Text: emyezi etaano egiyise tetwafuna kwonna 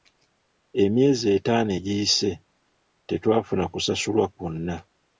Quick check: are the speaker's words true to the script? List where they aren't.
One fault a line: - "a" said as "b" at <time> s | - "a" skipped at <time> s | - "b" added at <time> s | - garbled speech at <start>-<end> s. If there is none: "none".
- "kusasulwa" added at 3.7 s